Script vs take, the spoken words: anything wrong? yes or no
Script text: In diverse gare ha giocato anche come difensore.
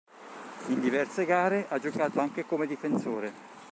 no